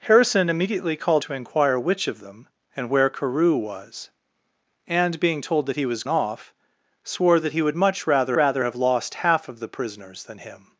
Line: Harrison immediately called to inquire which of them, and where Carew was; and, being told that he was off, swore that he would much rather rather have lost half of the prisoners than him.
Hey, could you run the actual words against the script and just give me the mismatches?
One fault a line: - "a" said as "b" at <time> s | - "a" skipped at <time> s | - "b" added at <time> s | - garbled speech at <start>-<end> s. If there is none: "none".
none